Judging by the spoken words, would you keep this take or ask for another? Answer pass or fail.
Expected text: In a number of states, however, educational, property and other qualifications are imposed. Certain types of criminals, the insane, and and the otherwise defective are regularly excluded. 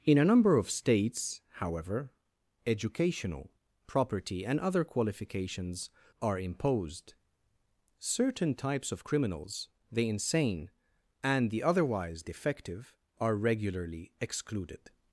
fail